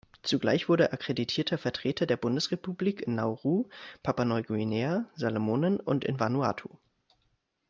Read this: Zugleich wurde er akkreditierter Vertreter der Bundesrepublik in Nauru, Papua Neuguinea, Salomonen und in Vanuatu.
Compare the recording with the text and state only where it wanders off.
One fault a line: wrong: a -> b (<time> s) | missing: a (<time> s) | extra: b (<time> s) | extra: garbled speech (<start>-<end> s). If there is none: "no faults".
no faults